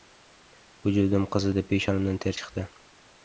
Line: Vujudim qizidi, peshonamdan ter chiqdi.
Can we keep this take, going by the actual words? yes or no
yes